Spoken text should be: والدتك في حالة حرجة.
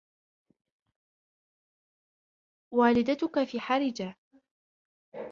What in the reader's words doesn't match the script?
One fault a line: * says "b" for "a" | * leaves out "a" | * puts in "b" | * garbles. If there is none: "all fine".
* leaves out "حالة"